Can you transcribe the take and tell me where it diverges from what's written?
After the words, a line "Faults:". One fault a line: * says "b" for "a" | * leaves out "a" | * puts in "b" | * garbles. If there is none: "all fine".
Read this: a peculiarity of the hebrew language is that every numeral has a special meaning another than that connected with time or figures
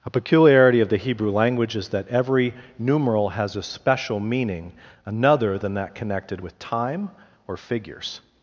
a peculiarity of the hebrew language is that every numeral has a special meaning another than that connected with time or figures
Faults:
all fine